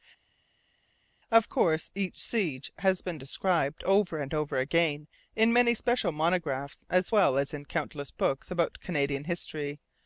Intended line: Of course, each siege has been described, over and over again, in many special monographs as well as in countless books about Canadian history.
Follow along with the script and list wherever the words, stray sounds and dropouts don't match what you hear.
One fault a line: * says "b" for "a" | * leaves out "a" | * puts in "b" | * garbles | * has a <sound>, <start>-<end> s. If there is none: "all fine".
all fine